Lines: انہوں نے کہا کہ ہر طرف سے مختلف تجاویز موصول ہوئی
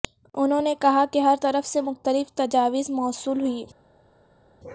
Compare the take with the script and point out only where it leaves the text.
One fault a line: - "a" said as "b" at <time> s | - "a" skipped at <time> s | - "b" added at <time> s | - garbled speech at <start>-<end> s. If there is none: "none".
none